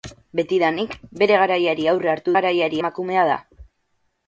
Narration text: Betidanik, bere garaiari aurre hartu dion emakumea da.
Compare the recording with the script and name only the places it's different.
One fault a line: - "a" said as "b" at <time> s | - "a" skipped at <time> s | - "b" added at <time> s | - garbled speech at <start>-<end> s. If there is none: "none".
- "dion" said as "garaiari" at 2.4 s